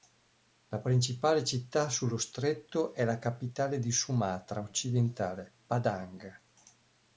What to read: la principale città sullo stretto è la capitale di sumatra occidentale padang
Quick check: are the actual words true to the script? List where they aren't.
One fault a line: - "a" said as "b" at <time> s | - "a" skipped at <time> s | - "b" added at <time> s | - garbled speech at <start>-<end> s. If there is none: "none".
none